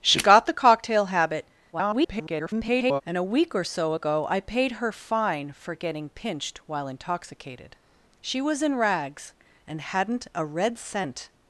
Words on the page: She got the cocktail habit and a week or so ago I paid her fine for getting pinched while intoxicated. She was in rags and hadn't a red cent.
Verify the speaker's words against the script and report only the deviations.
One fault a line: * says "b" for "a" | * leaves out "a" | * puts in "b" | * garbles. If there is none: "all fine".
* garbles